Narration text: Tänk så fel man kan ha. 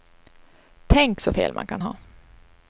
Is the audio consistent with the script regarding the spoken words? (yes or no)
yes